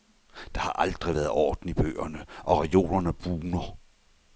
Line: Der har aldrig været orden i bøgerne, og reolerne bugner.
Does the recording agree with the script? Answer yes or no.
yes